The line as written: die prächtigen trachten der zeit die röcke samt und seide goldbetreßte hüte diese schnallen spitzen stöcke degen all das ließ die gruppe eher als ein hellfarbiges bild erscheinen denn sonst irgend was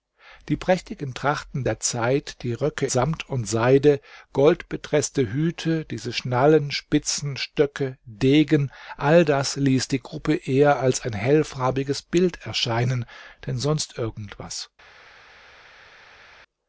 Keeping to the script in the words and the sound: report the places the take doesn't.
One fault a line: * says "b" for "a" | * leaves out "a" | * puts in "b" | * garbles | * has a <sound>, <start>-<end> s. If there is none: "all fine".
all fine